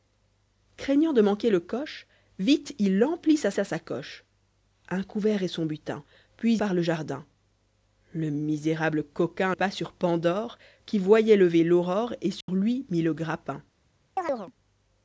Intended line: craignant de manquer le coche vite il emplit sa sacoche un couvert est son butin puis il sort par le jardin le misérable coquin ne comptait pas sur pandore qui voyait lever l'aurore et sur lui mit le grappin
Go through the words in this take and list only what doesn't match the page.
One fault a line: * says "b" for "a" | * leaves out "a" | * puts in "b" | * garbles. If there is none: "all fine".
* puts in "sa"
* leaves out "il sort"
* leaves out "ne comptait"